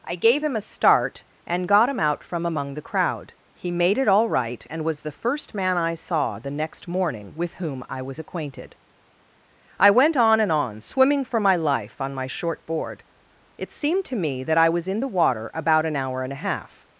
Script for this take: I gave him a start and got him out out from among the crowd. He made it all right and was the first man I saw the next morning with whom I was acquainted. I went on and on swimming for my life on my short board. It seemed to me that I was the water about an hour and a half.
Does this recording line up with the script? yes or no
no